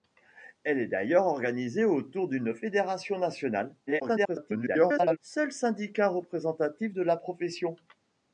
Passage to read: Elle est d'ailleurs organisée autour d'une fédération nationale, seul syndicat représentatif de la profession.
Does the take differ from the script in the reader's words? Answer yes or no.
yes